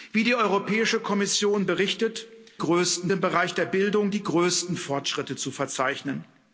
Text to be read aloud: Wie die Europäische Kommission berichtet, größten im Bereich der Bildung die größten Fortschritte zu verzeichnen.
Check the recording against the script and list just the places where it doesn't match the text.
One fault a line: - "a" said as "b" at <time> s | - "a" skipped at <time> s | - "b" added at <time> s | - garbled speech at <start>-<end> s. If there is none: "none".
none